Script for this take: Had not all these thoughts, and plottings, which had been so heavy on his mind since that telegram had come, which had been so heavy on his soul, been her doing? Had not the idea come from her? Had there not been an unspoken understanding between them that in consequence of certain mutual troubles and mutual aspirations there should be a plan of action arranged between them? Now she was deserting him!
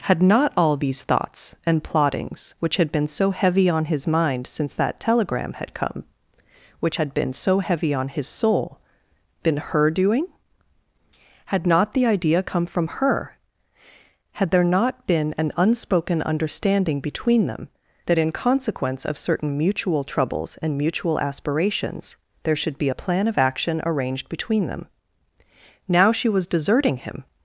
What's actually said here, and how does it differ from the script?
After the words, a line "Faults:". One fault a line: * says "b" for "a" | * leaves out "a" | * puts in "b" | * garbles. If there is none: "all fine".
Had not all these thoughts, and plottings, which had been so heavy on his mind since that telegram had come, which had been so heavy on his soul, been her doing? Had not the idea come from her? Had there not been an unspoken understanding between them that in consequence of certain mutual troubles and mutual aspirations there should be a plan of action arranged between them? Now she was deserting him!
Faults:
all fine